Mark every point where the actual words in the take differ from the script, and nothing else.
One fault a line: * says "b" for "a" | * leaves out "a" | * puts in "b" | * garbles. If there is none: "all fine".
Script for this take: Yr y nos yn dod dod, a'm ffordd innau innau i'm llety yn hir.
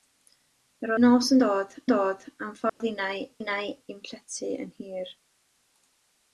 all fine